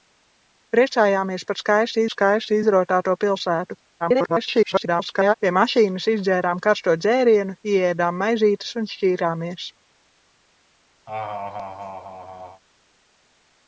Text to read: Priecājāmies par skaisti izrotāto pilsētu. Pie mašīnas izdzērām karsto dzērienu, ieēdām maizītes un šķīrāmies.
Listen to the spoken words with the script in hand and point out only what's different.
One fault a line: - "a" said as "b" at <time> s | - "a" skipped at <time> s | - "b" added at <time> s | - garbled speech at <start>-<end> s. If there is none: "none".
- "skaisti" added at 2.1 s
- garbled speech at 4.0-5.3 s